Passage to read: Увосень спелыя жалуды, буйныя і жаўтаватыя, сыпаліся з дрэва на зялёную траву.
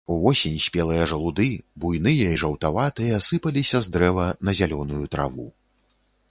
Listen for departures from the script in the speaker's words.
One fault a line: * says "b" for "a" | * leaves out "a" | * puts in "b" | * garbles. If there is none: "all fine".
all fine